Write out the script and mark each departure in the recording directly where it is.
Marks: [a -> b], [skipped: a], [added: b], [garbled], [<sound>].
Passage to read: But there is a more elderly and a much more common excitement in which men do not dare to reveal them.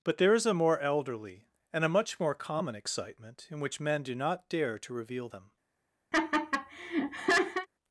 But there is a more elderly and a much more common excitement in which men do not dare to reveal them. [laugh]